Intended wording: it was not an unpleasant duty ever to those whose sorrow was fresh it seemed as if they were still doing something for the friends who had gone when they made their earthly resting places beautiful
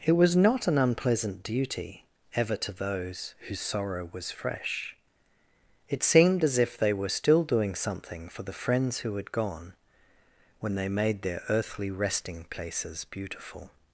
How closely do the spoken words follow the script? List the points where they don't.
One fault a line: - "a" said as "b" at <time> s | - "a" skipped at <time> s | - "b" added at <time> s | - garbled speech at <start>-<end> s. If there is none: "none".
none